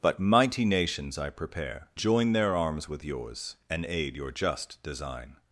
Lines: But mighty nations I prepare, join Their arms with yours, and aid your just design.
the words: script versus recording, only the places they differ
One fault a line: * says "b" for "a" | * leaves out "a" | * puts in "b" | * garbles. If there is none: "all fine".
all fine